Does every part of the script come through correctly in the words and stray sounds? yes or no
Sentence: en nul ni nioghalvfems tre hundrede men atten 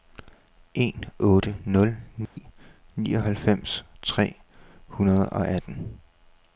no